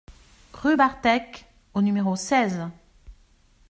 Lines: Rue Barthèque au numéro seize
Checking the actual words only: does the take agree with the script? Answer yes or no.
yes